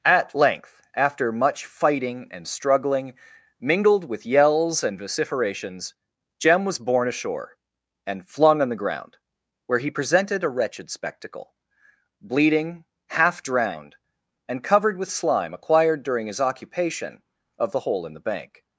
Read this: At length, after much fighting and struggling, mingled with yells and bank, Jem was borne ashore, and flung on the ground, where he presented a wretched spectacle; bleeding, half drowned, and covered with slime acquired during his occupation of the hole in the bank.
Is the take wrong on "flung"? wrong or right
right